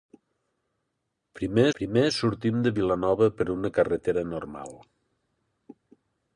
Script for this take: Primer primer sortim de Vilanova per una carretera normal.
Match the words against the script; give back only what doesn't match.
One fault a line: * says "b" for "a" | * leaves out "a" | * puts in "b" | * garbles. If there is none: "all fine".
all fine